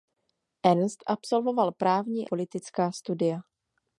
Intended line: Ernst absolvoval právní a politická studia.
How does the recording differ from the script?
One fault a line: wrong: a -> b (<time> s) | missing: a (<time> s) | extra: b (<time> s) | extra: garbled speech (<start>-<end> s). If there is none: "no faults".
missing: a (2.3 s)